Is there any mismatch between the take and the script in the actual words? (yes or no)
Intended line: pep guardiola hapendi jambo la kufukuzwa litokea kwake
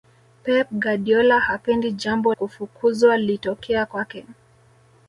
yes